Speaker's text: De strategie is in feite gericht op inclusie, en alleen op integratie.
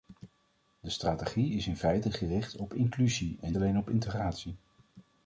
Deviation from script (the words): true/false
false